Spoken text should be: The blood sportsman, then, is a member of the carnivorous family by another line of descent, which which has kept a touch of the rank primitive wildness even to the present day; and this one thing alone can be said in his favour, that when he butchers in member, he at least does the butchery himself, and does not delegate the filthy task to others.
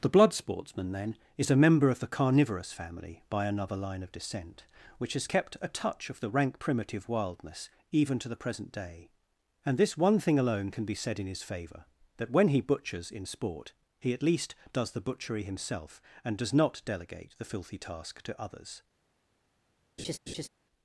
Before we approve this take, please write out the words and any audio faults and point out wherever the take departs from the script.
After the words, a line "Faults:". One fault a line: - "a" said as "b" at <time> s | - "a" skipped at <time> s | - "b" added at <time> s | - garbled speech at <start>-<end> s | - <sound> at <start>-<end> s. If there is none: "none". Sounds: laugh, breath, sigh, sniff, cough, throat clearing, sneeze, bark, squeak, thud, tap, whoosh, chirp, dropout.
The blood sportsman, then, is a member of the carnivorous family by another line of descent, which has kept a touch of the rank primitive wildness even to the present day; and this one thing alone can be said in his favour, that when he butchers in sport, he at least does the butchery himself, and does not delegate the filthy task to others.
Faults:
- "which" skipped at 5.1 s
- "member" said as "sport" at 13.2 s
- laugh at 20.0-20.5 s